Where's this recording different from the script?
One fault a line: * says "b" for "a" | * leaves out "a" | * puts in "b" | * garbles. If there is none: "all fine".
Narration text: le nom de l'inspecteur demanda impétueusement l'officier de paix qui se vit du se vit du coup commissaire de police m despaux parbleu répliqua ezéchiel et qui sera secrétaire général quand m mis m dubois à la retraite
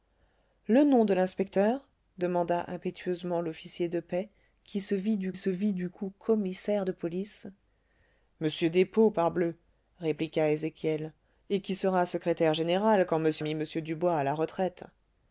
all fine